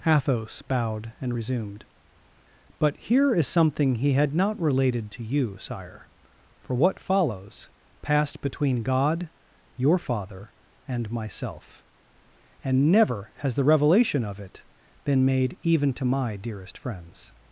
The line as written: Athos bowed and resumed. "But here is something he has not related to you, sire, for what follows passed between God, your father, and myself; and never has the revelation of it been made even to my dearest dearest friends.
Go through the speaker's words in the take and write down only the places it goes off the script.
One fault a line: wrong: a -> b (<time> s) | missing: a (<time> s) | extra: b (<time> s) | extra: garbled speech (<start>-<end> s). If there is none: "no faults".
wrong: has -> had (4.1 s)
missing: dearest (16.8 s)